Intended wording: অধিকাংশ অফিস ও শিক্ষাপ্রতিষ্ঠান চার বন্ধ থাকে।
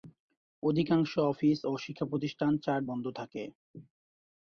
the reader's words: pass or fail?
pass